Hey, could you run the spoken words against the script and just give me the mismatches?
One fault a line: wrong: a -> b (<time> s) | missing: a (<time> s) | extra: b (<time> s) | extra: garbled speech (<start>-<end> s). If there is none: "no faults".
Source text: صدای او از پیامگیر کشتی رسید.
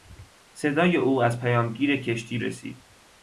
no faults